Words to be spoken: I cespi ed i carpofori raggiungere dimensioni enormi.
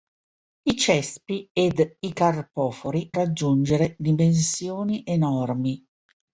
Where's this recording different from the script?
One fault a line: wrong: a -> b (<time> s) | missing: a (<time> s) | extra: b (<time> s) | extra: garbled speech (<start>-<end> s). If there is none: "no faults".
no faults